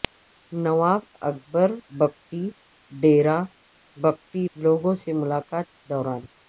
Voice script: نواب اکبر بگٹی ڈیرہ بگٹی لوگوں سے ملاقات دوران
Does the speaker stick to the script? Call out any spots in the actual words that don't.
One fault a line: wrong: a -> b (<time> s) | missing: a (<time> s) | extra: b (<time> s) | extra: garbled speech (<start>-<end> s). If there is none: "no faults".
no faults